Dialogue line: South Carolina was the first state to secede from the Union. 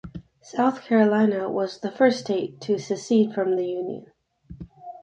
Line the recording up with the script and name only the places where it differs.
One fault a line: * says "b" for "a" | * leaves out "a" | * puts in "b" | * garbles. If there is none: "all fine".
all fine